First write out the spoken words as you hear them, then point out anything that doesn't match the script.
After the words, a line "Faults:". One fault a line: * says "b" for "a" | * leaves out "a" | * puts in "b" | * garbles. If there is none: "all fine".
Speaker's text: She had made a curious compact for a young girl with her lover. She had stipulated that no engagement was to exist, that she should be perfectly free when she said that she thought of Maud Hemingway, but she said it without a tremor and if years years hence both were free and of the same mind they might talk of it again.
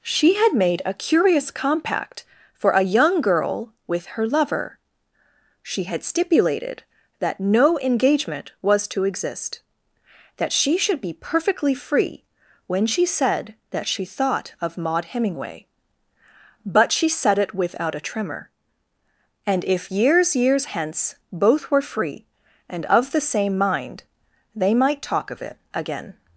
She had made a curious compact for a young girl with her lover. She had stipulated that no engagement was to exist, that she should be perfectly free when she said that she thought of Maud Hemingway, but she said it without a tremor and if years years hence both were free and of the same mind they might talk of it again.
Faults:
all fine